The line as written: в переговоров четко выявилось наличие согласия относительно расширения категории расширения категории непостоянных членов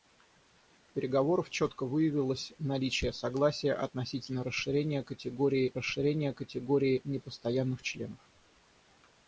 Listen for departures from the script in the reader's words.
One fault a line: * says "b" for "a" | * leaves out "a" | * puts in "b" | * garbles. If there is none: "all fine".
all fine